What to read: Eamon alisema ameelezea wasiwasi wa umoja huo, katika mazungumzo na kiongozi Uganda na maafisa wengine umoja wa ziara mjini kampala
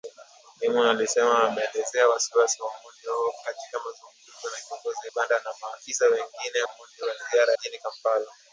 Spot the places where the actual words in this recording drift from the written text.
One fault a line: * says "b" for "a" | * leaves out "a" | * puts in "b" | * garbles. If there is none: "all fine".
all fine